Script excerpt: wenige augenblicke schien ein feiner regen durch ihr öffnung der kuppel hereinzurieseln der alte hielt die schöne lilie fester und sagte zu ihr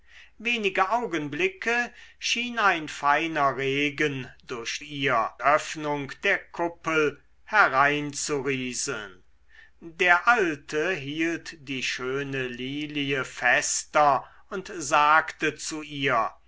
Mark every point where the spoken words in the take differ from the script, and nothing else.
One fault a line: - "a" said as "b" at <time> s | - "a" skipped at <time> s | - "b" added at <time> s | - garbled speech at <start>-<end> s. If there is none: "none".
none